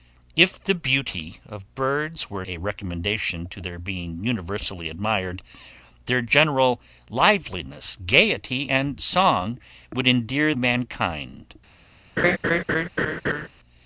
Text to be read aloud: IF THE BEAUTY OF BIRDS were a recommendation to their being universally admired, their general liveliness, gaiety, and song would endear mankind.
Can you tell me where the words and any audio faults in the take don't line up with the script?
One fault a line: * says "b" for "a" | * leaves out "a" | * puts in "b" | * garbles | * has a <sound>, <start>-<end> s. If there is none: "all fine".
* has a laugh, 12.2-13.5 s